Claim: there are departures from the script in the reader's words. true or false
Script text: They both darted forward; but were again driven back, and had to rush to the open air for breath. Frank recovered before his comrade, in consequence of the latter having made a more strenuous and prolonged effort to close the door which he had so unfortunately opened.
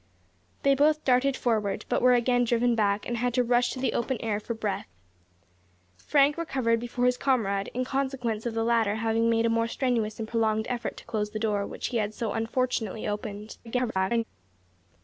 true